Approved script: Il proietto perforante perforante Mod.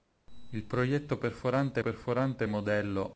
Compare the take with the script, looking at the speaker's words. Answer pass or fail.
pass